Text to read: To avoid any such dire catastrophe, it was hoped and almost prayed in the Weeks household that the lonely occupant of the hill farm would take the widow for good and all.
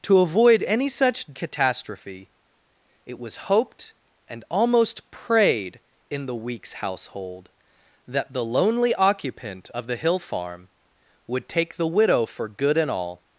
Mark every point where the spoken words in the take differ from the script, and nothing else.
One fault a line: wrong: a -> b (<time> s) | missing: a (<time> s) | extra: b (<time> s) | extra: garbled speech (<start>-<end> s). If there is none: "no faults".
missing: dire (1.3 s)